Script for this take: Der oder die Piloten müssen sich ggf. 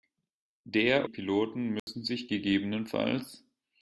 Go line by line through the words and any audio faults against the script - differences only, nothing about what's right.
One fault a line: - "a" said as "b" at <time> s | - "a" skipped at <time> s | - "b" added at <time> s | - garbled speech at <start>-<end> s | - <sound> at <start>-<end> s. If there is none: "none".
- "oder die" skipped at 1.1 s
- dropout at 1.8-1.9 s